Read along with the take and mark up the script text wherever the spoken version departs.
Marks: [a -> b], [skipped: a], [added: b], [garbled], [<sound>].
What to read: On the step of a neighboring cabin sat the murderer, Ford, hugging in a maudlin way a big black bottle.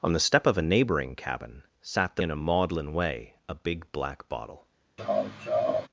On the step of a neighboring cabin sat the [skipped: murderer, Ford, hugging] in a maudlin way a big black bottle. [laugh]